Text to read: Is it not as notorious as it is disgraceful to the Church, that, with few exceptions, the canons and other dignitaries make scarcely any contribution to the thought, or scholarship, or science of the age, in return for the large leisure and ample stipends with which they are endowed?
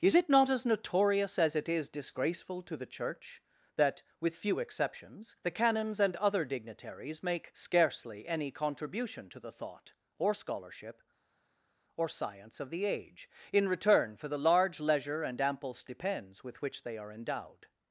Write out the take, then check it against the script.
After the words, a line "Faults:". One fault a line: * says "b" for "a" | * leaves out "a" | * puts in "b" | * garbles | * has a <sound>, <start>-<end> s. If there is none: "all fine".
Is it not as notorious as it is disgraceful to the Church, that, with few exceptions, the canons and other dignitaries make scarcely any contribution to the thought, or scholarship, or science of the age, in return for the large leisure and ample stipends with which they are endowed?
Faults:
all fine